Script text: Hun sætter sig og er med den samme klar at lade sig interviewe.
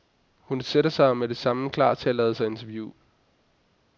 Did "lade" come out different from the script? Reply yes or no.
no